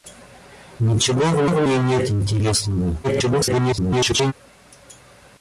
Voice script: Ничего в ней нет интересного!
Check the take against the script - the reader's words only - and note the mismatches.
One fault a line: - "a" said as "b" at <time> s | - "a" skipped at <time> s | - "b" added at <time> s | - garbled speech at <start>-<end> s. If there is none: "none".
- "в" added at 1.5 s
- garbled speech at 3.0-4.3 s